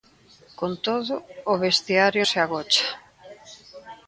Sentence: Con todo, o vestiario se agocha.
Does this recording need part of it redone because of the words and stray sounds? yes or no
no